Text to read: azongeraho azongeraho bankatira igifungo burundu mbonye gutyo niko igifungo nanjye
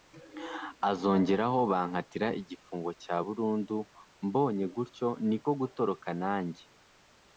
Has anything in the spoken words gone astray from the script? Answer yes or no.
yes